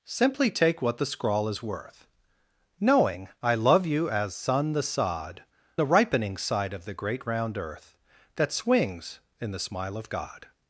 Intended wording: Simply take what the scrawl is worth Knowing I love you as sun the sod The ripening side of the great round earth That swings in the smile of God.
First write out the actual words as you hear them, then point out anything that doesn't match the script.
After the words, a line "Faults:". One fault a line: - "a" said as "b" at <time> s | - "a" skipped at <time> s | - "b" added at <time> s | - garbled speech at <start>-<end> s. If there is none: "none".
Simply take what the scrawl is worth Knowing I love you as sun the sod The ripening side of the great round earth That swings in the smile of God.
Faults:
none